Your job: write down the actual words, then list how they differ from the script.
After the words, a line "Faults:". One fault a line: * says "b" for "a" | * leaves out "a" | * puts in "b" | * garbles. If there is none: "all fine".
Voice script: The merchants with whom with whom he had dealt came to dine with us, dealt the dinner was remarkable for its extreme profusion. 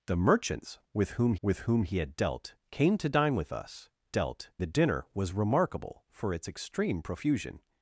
The merchants with whom with whom he had dealt came to dine with us, dealt the dinner was remarkable for its extreme profusion.
Faults:
all fine